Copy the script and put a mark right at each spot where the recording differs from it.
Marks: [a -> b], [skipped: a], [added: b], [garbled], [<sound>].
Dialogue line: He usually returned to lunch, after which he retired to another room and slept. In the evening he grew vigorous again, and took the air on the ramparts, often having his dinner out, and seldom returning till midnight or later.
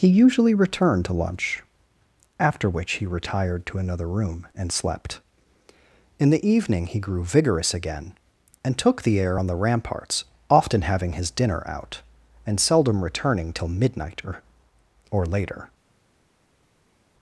He usually returned to lunch, after which he retired to another room and slept. In the evening he grew vigorous again, and took the air on the ramparts, often having his dinner out, and seldom returning till midnight or [added: or] later.